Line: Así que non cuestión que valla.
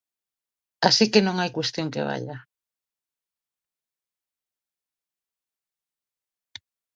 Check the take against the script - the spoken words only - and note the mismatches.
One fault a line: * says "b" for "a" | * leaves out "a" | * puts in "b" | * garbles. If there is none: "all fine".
* puts in "hai"